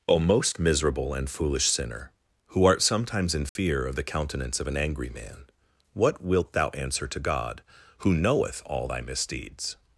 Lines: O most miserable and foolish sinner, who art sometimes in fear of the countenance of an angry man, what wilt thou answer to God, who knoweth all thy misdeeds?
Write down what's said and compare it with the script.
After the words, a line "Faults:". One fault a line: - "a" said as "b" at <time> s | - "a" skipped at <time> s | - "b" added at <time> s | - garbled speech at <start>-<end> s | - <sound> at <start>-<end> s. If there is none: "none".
O most miserable and foolish sinner, who art sometimes in fear of the countenance of an angry man, what wilt thou answer to God, who knoweth all thy misdeeds?
Faults:
- dropout at 3.5-3.6 s